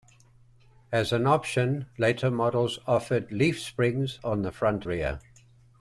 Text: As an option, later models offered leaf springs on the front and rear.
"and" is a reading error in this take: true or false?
true